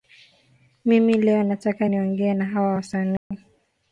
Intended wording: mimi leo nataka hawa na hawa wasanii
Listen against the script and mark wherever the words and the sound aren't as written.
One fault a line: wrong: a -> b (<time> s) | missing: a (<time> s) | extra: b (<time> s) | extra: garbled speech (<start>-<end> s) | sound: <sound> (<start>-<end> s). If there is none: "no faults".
wrong: hawa -> niongee (1.9 s)
sound: dropout (3.2-3.3 s)